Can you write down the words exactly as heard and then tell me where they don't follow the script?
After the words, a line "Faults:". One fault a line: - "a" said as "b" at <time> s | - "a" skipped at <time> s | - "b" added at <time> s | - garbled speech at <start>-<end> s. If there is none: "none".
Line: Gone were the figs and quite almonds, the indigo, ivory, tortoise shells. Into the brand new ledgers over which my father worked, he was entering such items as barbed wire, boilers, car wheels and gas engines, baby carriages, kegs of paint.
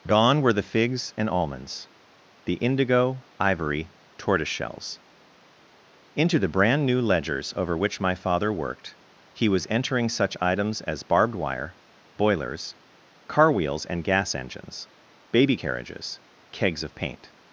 Gone were the figs and almonds, the indigo, ivory, tortoise shells. Into the brand new ledgers over which my father worked, he was entering such items as barbed wire, boilers, car wheels and gas engines, baby carriages, kegs of paint.
Faults:
- "quite" skipped at 1.3 s